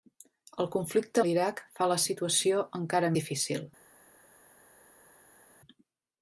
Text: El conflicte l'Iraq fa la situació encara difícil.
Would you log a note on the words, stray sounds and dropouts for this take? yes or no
no